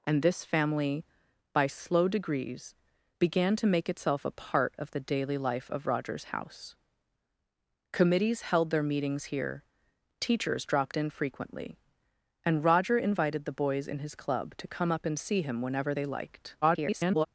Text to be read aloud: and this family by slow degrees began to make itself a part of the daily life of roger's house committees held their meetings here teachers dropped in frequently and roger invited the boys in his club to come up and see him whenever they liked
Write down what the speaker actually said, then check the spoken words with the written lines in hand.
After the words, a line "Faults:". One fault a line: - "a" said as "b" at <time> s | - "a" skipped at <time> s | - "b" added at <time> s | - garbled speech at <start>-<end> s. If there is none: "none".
and this family by slow degrees began to make itself a part of the daily life of roger's house committees held their meetings here teachers dropped in frequently and roger invited the boys in his club to come up and see him whenever they liked [garbled]
Faults:
- garbled speech at 16.6-17.3 s